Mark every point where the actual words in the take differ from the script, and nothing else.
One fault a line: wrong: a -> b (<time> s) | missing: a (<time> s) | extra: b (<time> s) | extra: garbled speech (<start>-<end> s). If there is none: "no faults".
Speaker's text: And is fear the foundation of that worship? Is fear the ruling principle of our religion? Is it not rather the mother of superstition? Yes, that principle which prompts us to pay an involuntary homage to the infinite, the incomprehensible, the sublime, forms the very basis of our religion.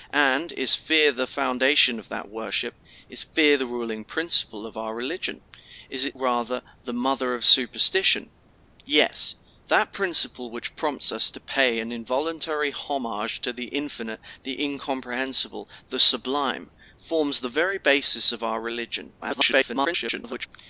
missing: not (6.2 s)
extra: garbled speech (19.2-20.5 s)